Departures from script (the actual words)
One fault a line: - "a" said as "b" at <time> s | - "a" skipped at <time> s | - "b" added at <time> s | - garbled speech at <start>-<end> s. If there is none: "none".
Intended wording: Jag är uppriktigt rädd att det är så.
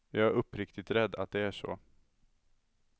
none